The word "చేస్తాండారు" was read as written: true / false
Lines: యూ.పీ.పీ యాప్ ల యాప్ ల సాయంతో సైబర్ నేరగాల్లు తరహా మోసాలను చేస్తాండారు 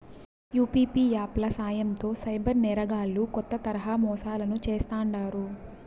true